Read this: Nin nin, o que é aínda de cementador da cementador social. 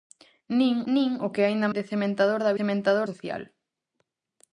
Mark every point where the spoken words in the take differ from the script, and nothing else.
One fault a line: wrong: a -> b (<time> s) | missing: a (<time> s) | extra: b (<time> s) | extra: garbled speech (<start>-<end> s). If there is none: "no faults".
no faults